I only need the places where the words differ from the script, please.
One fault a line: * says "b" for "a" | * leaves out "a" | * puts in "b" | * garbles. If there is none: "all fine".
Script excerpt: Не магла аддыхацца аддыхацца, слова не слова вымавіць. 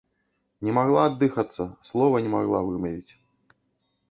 * leaves out "аддыхацца"
* says "магла" for "слова"